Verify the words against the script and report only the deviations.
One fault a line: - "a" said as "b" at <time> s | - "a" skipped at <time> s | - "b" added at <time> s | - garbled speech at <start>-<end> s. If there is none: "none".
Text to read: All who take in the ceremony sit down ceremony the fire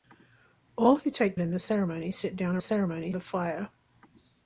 none